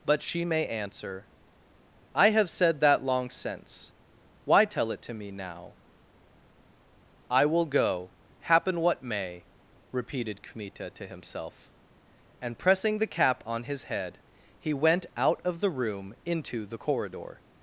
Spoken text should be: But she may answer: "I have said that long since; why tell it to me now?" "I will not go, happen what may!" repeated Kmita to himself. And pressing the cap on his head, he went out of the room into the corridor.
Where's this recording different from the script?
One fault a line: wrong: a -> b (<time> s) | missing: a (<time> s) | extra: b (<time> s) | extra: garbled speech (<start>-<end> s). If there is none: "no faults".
missing: not (7.7 s)